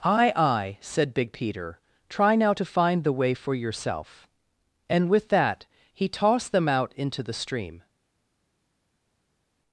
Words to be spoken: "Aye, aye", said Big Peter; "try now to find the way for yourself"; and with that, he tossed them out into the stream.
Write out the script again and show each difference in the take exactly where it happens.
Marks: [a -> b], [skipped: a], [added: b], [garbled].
"Aye, aye", said Big Peter; "try now to find the way for yourself"; and with that, he tossed them out into the stream.